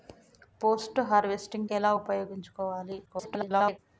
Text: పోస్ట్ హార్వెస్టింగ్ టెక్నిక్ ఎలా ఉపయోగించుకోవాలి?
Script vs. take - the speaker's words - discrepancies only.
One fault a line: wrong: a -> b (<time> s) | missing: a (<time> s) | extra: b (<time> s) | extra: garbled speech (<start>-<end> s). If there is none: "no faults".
missing: టెక్నిక్ (1.7 s)
extra: garbled speech (3.1-3.8 s)